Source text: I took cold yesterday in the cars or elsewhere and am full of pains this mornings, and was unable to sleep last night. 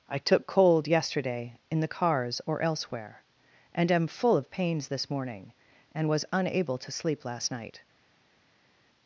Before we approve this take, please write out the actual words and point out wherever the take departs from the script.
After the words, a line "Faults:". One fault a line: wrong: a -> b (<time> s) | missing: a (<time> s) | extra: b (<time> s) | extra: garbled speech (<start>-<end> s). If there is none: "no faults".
I took cold yesterday in the cars or elsewhere and am full of pains this morning, and was unable to sleep last night.
Faults:
wrong: mornings -> morning (5.1 s)